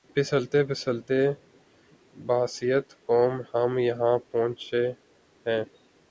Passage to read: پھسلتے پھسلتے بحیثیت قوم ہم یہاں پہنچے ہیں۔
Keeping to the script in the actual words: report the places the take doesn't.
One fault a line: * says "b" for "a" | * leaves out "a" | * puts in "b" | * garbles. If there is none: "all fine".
all fine